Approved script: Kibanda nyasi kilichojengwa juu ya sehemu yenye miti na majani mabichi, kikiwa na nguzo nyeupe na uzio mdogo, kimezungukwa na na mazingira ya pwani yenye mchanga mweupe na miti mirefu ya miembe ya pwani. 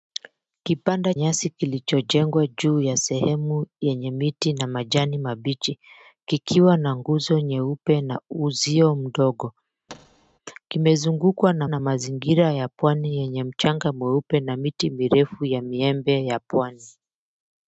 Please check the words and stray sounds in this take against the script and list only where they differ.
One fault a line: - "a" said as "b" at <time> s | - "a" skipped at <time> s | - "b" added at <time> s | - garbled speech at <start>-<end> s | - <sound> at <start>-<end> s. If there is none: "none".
- thud at 9.9-10.4 s